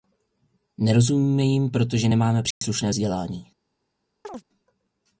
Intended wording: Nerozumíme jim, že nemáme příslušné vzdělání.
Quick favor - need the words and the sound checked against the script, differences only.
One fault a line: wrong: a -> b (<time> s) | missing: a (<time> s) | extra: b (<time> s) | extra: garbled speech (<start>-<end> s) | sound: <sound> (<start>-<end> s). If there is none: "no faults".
wrong: že -> protože (1.7 s)
sound: dropout (2.5-2.6 s)
sound: chirp (4.2-4.4 s)